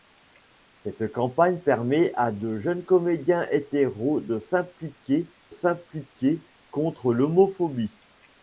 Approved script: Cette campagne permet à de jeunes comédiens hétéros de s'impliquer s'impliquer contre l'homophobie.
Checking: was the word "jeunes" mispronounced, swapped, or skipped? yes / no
no